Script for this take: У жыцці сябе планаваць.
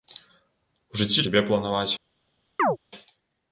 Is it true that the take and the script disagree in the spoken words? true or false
false